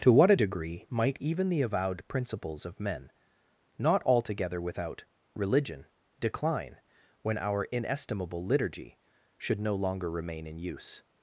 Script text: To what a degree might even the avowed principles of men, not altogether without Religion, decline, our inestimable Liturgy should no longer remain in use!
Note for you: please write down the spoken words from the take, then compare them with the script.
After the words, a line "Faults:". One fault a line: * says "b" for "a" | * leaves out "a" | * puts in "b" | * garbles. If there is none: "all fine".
To what a degree might even the avowed principles of men, not altogether without Religion, decline, when our inestimable Liturgy should no longer remain in use!
Faults:
* puts in "when"